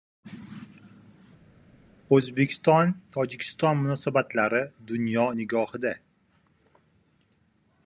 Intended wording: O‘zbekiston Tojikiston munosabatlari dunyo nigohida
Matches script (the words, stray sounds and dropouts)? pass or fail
pass